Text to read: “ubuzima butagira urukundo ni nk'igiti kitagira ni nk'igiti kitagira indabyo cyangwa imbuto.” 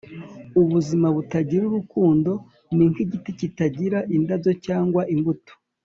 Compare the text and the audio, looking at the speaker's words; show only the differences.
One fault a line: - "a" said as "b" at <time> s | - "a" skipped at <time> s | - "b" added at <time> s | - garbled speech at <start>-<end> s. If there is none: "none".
- "ni nk'igiti kitagira" skipped at 4.0 s